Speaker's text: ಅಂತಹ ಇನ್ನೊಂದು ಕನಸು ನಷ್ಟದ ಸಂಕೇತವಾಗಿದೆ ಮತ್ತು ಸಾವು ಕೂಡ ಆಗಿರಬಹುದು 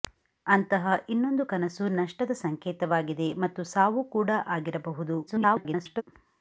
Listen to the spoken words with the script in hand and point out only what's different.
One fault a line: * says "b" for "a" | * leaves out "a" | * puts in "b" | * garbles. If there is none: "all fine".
* garbles